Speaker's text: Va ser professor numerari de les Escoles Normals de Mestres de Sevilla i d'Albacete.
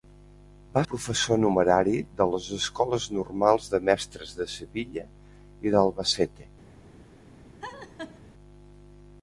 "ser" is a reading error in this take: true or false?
true